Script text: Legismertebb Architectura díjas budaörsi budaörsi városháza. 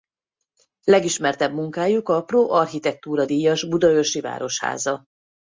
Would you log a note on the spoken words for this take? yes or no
yes